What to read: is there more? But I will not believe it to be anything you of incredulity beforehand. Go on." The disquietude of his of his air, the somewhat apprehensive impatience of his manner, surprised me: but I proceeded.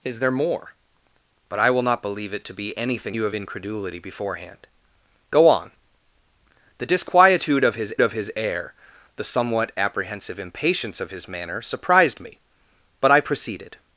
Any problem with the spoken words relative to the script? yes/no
no